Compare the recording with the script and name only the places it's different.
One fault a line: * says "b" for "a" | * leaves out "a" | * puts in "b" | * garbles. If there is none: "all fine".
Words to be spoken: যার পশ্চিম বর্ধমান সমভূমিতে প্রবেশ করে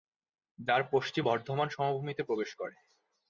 all fine